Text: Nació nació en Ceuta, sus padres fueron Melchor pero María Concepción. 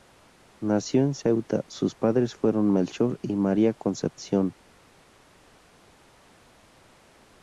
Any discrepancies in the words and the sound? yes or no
yes